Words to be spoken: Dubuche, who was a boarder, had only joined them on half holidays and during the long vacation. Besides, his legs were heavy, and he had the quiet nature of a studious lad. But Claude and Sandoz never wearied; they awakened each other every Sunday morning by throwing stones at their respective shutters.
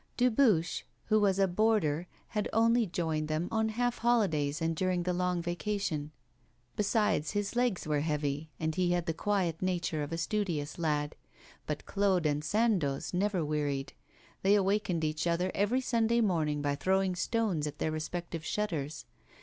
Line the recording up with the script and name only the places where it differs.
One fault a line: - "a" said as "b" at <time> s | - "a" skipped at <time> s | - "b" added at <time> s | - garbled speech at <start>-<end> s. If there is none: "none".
none